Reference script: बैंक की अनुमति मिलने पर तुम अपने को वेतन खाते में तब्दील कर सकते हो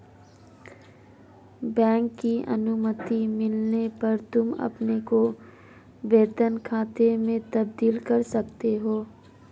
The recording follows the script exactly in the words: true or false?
true